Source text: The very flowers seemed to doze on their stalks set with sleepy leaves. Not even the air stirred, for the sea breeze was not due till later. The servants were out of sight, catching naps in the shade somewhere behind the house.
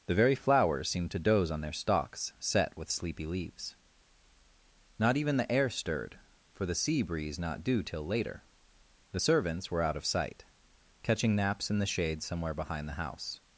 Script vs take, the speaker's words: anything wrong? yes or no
yes